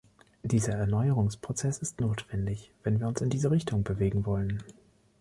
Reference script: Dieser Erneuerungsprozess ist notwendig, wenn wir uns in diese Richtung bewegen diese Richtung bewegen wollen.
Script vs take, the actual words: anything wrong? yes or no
yes